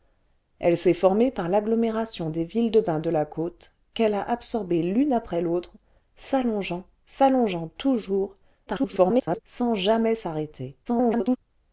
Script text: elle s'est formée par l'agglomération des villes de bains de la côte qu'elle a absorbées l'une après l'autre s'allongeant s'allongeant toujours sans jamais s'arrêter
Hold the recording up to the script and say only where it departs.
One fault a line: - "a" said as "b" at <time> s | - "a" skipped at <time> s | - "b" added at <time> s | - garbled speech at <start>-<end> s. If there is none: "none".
- garbled speech at 8.7-9.4 s
- garbled speech at 10.8-11.4 s